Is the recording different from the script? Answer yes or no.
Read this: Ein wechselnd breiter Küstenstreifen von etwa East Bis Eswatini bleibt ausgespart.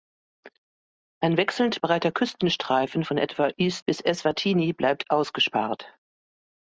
no